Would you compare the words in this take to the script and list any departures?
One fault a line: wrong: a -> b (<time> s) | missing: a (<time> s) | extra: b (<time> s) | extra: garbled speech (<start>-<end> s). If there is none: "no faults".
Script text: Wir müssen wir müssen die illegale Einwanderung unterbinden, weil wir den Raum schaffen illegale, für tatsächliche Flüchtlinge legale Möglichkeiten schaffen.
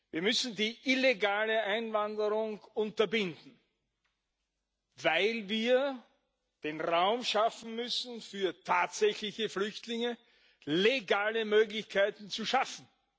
missing: wir müssen (0.6 s)
wrong: illegale -> müssen (7.8 s)
extra: zu (12.3 s)